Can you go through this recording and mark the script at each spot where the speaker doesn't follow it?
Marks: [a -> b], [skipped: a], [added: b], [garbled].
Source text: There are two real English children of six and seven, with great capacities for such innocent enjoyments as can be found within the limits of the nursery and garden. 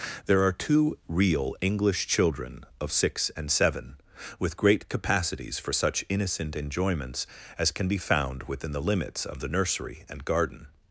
There are two real English children of six and seven, with great capacities for such innocent enjoyments as can be found within the limits of the nursery and garden.